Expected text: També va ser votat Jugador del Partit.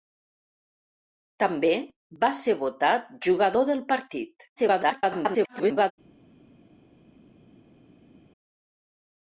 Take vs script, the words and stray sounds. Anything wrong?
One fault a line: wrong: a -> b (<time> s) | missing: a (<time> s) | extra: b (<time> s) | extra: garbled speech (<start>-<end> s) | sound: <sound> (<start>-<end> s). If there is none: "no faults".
extra: garbled speech (4.6-5.9 s)